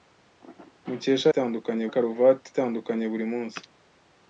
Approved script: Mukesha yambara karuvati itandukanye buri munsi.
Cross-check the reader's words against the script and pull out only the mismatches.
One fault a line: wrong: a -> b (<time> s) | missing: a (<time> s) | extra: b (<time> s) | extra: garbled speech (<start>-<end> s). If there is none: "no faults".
wrong: yambara -> itandukanye (1.3 s)